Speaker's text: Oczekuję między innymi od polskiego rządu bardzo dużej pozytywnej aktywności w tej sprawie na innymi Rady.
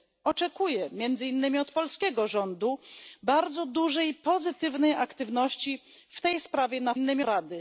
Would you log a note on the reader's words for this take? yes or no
no